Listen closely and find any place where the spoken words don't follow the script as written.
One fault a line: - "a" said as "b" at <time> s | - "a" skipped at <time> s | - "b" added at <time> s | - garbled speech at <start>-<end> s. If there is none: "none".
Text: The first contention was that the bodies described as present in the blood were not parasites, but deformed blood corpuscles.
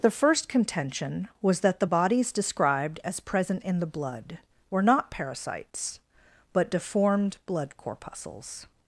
none